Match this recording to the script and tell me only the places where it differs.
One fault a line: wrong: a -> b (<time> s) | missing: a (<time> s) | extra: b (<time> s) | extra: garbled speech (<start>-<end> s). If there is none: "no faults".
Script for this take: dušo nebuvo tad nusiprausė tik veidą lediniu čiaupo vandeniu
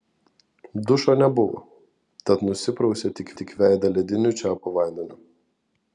extra: tik (3.4 s)